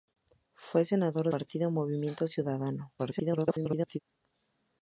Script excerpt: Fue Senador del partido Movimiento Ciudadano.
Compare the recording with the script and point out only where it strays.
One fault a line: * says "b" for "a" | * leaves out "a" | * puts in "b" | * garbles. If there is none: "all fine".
* leaves out "del"
* garbles